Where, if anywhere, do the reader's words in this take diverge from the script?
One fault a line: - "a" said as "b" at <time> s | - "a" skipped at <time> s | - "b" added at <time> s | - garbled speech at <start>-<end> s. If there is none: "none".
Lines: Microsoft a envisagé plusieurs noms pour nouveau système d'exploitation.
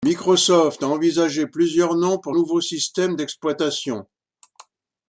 none